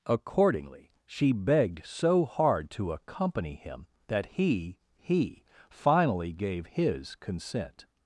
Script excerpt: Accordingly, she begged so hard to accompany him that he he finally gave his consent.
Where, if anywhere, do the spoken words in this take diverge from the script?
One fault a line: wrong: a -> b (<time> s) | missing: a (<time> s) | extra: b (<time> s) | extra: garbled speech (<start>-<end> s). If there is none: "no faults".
no faults